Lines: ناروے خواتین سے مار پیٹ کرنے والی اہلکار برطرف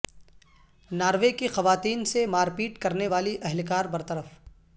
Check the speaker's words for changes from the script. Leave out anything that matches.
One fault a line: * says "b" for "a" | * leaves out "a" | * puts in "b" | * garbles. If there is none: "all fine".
* puts in "کی"